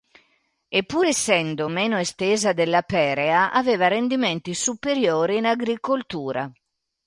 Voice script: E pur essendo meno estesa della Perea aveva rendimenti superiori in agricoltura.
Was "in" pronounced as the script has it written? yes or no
yes